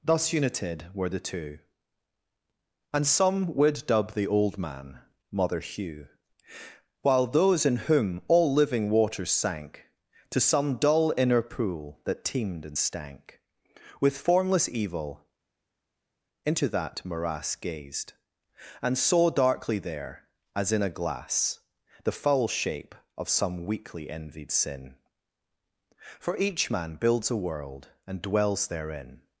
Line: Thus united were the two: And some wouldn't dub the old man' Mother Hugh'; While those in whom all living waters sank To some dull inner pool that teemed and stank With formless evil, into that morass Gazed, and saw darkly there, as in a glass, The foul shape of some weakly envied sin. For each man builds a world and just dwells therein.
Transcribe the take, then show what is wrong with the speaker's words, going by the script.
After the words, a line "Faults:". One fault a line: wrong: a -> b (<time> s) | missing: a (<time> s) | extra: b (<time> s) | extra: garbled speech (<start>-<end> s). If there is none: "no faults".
Thus united were the two: And some would dub the old man' Mother Hugh'; While those in whom all living waters sank To some dull inner pool that teemed and stank With formless evil, into that morass Gazed, and saw darkly there, as in a glass, The foul shape of some weakly envied sin. For each man builds a world and dwells therein.
Faults:
wrong: wouldn't -> would (3.5 s)
missing: just (28.2 s)